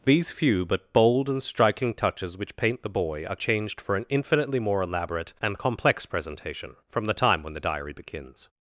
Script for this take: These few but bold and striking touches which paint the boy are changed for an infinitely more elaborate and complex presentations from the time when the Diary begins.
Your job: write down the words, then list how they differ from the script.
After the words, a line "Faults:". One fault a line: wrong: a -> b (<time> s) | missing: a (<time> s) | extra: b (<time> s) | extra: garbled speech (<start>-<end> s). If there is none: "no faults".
These few but bold and striking touches which paint the boy are changed for an infinitely more elaborate and complex presentation from the time when the Diary begins.
Faults:
wrong: presentations -> presentation (6.0 s)